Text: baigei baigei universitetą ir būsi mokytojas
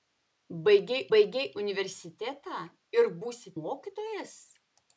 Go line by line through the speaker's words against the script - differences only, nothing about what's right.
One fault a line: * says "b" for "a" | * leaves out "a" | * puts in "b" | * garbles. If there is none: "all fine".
all fine